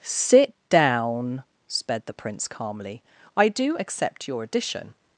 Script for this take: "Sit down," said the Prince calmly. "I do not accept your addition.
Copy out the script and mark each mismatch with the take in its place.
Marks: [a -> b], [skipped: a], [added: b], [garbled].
"Sit down," [said -> sped] the Prince calmly. "I do [skipped: not] accept your addition.